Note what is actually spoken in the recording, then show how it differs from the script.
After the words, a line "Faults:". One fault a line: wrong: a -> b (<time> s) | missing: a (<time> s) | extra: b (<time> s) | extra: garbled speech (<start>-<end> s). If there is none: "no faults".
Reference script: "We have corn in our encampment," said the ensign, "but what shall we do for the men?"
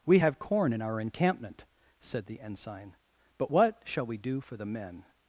"We have corn in our encampment," said the ensign, "but what shall we do for the men?"
Faults:
no faults